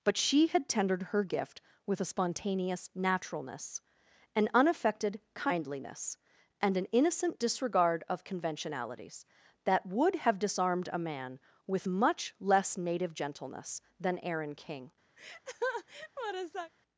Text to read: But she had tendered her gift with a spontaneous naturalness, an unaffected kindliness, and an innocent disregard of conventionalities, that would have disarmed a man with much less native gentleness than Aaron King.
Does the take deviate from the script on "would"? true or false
false